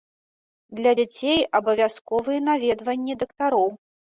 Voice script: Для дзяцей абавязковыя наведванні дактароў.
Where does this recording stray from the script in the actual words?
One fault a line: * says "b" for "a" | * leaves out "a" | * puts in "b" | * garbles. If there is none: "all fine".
all fine